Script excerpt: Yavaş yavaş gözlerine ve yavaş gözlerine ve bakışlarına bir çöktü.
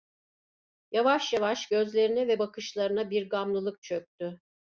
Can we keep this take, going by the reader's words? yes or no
no